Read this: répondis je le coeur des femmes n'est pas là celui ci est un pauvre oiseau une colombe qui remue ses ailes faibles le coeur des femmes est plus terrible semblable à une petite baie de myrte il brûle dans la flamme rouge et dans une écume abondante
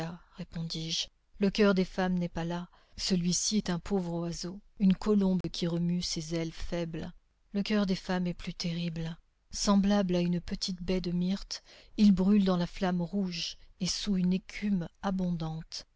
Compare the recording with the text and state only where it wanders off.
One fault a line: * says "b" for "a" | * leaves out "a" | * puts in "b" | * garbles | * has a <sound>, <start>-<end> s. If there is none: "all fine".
* has a dropout, 5.4-5.4 s
* says "sous" for "dans"